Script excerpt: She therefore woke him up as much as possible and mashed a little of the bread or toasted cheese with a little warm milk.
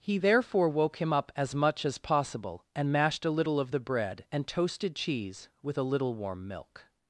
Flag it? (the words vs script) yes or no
yes